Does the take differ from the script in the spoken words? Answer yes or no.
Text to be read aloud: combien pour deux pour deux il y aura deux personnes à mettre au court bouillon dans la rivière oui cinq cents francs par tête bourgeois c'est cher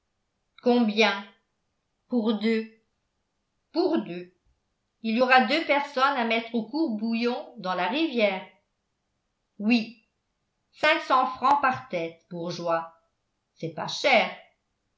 yes